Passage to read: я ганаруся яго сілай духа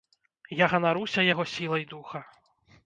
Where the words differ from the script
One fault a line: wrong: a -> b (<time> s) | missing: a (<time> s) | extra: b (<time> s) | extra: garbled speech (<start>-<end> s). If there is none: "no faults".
no faults